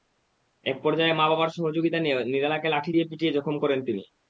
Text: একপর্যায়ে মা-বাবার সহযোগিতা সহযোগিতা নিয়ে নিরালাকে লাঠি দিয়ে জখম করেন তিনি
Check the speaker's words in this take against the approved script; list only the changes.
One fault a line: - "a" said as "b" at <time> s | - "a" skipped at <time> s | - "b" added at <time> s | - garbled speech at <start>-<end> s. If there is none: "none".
- "সহযোগিতা" skipped at 2.0 s
- "পিটিয়ে" added at 3.1 s